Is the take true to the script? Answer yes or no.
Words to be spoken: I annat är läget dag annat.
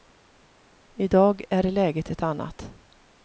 no